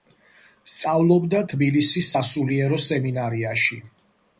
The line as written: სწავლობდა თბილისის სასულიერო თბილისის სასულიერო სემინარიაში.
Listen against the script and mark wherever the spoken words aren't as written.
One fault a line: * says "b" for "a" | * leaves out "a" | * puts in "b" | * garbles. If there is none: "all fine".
* leaves out "თბილისის სასულიერო"